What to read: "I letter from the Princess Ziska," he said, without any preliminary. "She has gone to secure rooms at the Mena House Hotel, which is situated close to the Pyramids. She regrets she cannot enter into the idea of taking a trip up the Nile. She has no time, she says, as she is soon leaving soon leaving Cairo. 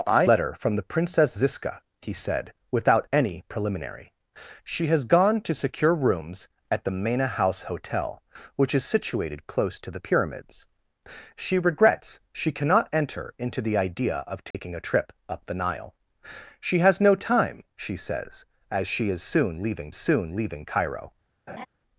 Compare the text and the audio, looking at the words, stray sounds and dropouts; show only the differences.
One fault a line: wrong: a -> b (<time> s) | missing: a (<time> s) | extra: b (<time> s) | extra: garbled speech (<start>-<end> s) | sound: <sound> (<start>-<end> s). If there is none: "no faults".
sound: dropout (14.5-14.5 s)
sound: laugh (21.5-21.7 s)